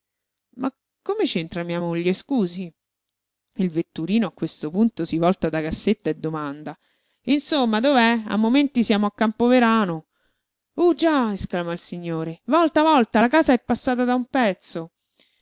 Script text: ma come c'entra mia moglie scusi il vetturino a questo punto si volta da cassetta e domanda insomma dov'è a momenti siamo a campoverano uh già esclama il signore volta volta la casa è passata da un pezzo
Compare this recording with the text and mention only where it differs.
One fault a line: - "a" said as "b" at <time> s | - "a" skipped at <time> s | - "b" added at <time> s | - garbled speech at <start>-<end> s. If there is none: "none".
none